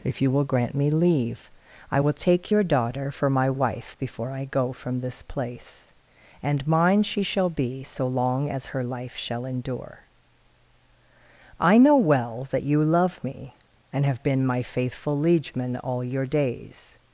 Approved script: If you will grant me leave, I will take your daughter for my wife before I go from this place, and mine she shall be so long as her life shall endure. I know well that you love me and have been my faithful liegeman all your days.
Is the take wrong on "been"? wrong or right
right